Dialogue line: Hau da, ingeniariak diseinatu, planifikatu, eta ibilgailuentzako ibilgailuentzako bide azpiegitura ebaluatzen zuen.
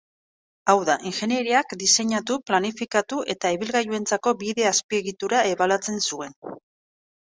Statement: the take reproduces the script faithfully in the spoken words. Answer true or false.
false